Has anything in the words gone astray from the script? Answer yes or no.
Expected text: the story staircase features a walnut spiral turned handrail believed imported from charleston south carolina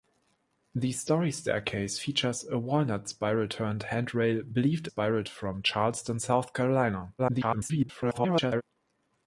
yes